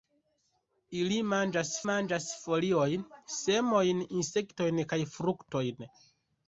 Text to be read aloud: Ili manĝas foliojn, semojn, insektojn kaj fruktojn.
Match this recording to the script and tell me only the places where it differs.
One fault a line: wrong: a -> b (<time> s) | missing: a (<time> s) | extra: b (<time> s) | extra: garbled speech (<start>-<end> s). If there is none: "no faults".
extra: manĝas (1.9 s)